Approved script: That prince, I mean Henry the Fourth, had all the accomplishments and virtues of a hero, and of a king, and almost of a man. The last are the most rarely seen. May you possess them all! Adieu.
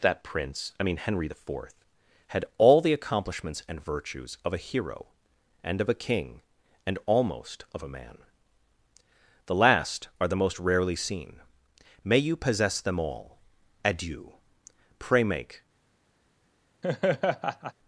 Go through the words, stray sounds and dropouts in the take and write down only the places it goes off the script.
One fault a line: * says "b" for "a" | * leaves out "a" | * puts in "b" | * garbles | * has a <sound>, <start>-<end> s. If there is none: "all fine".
* puts in "Pray make"
* has a laugh, 16.8-17.7 s